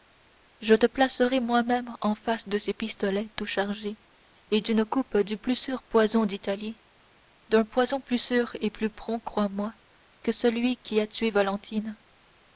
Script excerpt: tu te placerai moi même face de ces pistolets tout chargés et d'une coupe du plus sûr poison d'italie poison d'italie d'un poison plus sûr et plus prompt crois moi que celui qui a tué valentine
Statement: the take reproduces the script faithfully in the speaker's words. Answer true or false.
false